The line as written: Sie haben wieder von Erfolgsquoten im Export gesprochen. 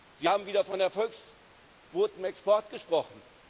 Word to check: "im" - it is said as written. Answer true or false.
false